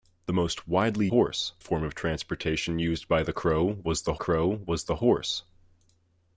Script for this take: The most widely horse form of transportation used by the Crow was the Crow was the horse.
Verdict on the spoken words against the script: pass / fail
pass